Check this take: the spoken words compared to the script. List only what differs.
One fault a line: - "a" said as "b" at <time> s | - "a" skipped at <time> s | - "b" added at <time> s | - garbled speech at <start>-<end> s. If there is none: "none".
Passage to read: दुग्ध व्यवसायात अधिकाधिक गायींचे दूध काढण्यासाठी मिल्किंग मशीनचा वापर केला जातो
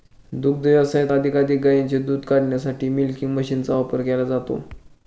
none